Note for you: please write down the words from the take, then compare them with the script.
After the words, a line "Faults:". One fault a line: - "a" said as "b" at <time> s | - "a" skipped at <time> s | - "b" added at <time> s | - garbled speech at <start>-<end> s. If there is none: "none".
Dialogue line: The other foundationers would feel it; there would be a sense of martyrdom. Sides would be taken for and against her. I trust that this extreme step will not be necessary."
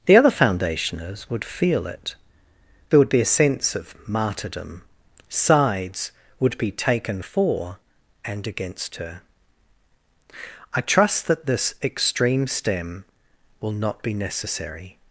The other foundationers would feel it; there would be a sense of martyrdom. Sides would be taken for and against her. I trust that this extreme stem will not be necessary."
Faults:
- "step" said as "stem" at 12.5 s